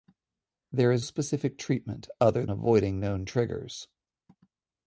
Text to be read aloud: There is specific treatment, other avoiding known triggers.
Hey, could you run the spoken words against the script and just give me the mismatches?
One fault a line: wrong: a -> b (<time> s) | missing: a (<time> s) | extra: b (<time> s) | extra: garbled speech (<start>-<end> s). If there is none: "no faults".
no faults